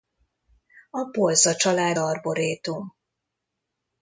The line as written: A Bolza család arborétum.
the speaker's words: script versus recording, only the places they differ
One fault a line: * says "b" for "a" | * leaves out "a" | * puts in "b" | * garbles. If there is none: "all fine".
all fine